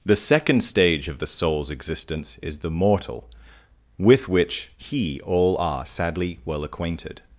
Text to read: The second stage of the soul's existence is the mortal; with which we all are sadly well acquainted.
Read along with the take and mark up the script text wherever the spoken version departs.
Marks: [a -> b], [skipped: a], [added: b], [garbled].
The second stage of the soul's existence is the mortal; with which [we -> he] all are sadly well acquainted.